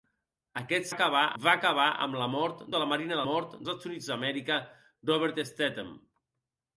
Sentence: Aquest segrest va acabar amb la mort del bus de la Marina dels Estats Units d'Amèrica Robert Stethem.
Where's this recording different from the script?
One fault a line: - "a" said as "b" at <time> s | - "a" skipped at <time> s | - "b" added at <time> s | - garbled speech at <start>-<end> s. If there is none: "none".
- "segrest" said as "acabar" at 0.9 s
- "del bus" skipped at 2.7 s
- "dels" said as "mort" at 3.3 s